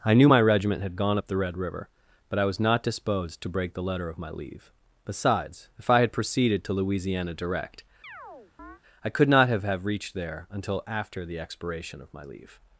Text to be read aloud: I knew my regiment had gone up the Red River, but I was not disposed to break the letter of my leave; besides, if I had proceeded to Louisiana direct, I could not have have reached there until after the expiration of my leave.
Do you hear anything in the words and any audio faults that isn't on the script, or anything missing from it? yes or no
yes